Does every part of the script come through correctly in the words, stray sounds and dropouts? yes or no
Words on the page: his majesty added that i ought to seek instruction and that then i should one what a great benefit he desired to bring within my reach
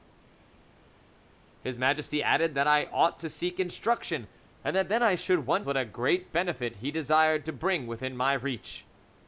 yes